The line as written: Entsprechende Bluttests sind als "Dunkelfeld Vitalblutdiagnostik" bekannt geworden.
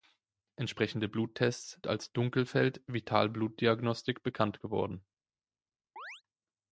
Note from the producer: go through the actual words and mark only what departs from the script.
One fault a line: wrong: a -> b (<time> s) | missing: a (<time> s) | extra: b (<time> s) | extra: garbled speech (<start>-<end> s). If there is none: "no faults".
missing: sind (1.8 s)